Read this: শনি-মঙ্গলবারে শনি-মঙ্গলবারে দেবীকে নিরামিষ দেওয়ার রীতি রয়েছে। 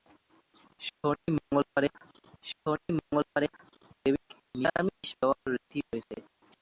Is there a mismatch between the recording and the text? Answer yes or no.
no